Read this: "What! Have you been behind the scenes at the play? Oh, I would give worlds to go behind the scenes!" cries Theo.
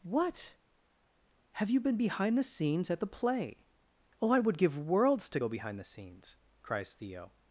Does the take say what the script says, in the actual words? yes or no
yes